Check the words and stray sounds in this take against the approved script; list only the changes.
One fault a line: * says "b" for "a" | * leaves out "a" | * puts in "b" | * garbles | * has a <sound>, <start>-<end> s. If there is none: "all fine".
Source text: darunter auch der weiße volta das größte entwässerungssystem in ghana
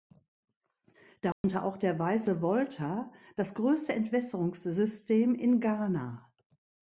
* has a dropout, 1.3-1.4 s